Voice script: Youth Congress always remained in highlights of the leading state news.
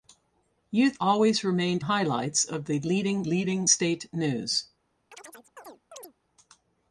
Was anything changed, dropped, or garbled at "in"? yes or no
yes